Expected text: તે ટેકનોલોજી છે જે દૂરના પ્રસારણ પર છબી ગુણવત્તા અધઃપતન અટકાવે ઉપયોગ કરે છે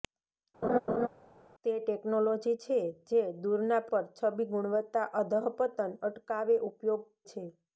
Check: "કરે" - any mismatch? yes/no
yes